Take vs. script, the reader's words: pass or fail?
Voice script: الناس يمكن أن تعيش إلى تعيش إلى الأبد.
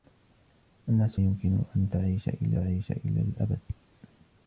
pass